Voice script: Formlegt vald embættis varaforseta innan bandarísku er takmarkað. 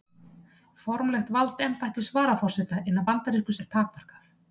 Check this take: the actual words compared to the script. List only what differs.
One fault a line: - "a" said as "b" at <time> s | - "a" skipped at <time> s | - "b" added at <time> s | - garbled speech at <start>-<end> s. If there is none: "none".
none